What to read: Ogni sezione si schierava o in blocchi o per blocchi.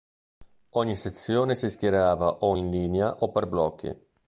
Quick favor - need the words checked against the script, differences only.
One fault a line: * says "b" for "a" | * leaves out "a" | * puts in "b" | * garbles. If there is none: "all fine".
* says "linea" for "blocchi"